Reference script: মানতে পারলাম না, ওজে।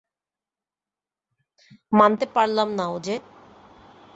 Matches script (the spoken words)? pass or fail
pass